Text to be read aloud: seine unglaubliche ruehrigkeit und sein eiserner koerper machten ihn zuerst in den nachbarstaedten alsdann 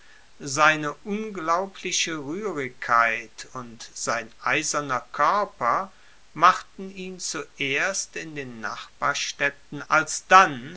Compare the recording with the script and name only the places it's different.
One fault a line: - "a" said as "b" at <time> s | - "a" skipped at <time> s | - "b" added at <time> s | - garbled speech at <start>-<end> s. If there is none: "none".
none